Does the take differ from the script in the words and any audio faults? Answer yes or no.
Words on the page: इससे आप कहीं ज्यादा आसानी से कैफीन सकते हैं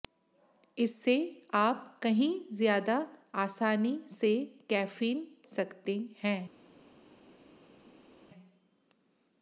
no